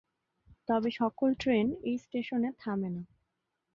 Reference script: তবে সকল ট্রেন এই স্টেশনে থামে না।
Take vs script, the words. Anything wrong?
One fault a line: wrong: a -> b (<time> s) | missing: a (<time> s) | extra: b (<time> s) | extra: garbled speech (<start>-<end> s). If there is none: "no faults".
no faults